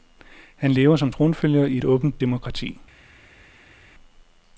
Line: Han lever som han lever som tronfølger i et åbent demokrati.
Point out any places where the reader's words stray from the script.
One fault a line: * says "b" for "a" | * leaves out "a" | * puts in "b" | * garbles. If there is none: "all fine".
* leaves out "han lever som"